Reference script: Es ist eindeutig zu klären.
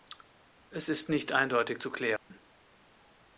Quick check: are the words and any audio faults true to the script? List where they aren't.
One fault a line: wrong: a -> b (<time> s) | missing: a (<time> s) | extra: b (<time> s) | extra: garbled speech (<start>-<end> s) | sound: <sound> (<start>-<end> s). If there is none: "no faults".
extra: nicht (1.1 s)
sound: dropout (2.2-2.3 s)